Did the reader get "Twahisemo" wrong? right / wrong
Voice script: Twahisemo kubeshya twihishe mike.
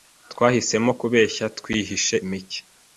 right